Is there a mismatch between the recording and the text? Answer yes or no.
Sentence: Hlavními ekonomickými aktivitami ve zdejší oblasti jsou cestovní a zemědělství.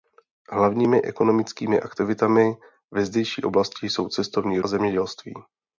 no